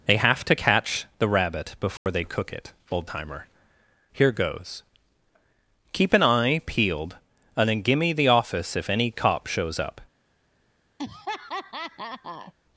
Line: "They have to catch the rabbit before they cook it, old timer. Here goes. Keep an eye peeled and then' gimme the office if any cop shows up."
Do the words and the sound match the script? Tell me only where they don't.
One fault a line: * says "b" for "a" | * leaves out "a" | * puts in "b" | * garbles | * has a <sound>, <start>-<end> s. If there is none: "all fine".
* has a dropout, 2.0-2.1 s
* has a laugh, 11.0-12.5 s